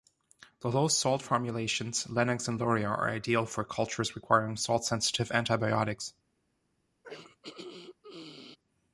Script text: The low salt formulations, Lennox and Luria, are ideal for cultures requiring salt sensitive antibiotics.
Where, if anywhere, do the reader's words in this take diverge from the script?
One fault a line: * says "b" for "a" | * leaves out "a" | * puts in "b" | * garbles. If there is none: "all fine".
all fine